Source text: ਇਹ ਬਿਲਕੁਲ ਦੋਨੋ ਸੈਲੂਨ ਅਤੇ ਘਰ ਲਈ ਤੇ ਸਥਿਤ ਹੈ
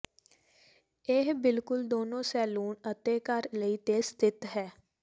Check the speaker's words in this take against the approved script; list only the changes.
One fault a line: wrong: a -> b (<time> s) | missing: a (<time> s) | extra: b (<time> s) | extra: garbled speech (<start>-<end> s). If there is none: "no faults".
no faults